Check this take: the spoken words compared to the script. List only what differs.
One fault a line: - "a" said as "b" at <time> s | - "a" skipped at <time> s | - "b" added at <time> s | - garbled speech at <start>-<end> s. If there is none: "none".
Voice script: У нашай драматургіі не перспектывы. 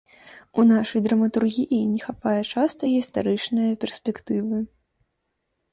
- "хапае часта гістарычнае" added at 2.1 s